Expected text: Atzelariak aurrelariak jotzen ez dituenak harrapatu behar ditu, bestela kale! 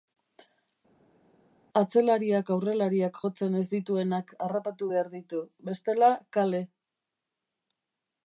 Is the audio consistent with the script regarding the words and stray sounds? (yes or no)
yes